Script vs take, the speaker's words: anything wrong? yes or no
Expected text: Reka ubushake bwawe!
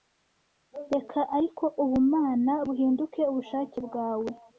yes